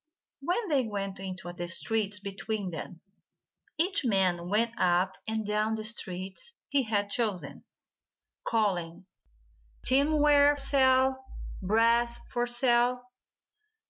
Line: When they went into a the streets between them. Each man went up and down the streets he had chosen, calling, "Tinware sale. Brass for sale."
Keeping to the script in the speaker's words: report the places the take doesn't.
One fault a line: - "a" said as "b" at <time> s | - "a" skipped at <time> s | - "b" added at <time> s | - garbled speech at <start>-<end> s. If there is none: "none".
none